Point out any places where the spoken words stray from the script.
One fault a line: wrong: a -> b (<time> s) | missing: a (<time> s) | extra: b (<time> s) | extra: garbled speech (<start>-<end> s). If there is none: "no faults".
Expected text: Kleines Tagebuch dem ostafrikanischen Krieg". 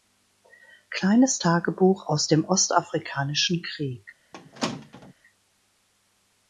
extra: aus (2.1 s)